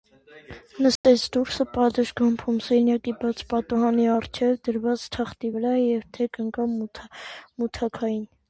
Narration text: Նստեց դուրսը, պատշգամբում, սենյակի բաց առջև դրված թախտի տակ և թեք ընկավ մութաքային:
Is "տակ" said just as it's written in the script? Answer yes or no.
no